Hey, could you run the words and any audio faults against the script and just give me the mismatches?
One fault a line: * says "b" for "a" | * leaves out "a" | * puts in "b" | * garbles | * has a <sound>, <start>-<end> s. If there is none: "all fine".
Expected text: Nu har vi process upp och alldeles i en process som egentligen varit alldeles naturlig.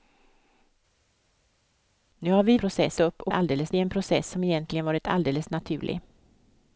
all fine